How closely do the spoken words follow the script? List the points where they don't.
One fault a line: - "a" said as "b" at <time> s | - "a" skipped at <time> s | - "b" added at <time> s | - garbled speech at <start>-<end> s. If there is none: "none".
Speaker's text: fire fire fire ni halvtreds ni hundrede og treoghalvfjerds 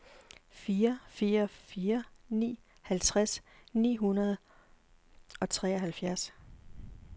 none